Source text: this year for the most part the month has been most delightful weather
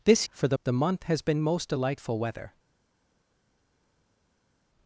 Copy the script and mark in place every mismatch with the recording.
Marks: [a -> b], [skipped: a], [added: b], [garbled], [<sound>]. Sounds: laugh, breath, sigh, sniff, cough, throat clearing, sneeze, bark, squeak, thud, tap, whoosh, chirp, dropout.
this [skipped: year] for the [skipped: most part] the month has been most delightful weather